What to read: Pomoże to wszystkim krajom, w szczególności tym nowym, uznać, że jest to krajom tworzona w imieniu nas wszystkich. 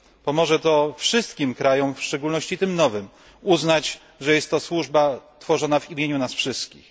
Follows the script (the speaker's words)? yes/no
no